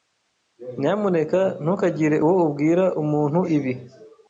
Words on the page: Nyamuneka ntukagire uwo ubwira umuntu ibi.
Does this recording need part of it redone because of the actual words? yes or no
no